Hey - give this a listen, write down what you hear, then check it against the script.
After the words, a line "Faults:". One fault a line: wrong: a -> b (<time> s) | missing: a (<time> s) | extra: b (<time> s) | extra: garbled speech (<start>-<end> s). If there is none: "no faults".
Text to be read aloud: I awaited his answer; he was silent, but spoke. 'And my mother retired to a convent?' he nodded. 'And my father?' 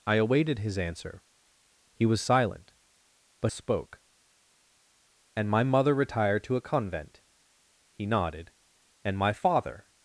I awaited his answer; he was silent, but spoke. 'And my mother retired to a convent?' he nodded. 'And my father?'
Faults:
no faults